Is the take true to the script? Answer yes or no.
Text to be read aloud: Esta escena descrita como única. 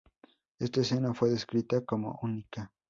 no